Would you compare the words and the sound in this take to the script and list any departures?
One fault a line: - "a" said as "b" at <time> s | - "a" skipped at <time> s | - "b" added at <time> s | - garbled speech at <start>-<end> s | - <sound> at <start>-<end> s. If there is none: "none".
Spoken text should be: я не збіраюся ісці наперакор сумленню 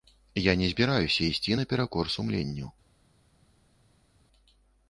none